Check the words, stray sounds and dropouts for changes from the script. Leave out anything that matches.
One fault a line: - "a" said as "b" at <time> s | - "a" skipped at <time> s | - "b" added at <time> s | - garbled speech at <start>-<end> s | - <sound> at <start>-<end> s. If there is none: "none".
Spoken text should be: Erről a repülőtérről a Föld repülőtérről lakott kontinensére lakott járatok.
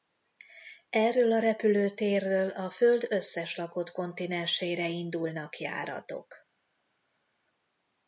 - "repülőtérről" said as "összes" at 3.1 s
- "lakott" said as "indulnak" at 4.9 s